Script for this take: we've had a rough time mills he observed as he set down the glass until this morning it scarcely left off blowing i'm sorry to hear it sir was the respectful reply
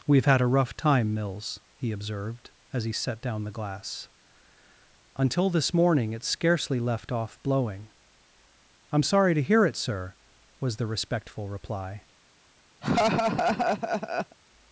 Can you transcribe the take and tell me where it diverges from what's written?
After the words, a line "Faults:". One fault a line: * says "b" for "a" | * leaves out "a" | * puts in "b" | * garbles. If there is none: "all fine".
we've had a rough time mills he observed as he set down the glass until this morning it scarcely left off blowing i'm sorry to hear it sir was the respectful reply
Faults:
all fine